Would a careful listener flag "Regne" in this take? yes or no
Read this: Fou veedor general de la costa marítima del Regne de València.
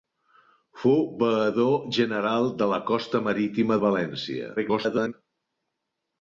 yes